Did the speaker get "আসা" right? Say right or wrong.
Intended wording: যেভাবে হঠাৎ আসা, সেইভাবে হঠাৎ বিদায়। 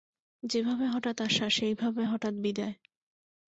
right